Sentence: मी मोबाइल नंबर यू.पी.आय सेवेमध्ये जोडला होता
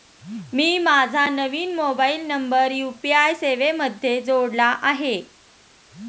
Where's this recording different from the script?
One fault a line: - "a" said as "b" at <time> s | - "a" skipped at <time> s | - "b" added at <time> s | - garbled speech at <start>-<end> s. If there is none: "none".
- "माझा नवीन" added at 0.8 s
- "होता" said as "आहे" at 4.8 s